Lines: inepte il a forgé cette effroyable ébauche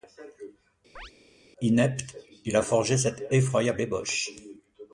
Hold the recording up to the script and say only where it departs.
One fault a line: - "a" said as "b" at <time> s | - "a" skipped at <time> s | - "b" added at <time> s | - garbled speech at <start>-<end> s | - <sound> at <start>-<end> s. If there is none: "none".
- chirp at 1.0-1.1 s